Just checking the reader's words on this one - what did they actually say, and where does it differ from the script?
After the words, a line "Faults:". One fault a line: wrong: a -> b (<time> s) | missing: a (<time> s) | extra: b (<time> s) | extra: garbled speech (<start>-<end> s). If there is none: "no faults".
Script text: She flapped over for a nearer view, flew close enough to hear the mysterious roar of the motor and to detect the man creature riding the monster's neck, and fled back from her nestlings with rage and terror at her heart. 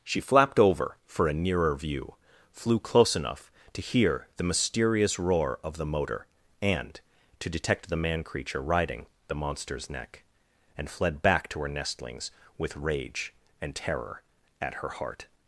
She flapped over for a nearer view, flew close enough to hear the mysterious roar of the motor and to detect the man creature riding the monster's neck, and fled back to her nestlings with rage and terror at her heart.
Faults:
wrong: from -> to (11.5 s)